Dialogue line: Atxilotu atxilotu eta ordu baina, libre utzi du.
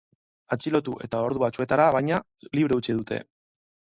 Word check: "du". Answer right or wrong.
wrong